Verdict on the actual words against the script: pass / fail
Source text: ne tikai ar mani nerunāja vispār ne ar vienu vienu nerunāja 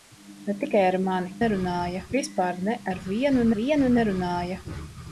pass